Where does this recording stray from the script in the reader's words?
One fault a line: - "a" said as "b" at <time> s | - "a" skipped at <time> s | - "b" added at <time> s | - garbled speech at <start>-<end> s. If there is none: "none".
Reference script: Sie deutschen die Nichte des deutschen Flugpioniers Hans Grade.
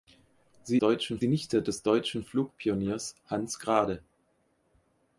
none